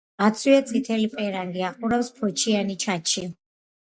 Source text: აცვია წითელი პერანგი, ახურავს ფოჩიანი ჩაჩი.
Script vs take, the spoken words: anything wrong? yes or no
no